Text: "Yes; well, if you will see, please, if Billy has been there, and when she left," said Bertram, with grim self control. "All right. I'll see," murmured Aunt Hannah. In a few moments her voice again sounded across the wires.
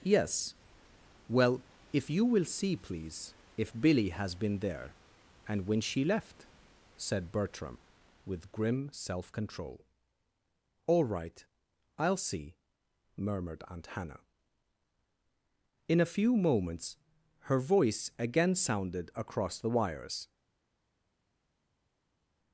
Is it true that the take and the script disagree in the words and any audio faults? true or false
false